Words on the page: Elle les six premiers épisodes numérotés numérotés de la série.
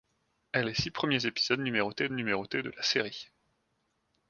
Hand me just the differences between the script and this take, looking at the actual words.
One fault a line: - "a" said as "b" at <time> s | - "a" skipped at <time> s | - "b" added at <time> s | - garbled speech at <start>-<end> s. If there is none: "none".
none